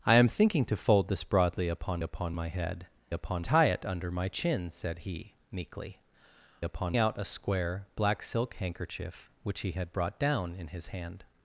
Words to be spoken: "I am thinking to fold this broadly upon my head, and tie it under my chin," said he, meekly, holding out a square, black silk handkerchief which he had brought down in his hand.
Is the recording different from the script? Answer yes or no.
yes